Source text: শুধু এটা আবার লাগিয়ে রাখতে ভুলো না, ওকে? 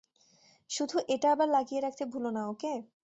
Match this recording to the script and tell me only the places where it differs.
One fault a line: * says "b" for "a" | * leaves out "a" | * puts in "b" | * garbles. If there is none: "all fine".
all fine